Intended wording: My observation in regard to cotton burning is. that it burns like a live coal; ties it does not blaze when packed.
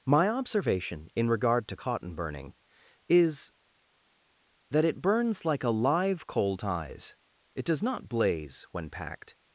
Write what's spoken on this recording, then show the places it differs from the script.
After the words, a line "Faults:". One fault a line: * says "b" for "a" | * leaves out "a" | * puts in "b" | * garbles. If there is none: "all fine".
My observation in regard to cotton burning is. that it burns like a live coal; ties it does not blaze when packed.
Faults:
all fine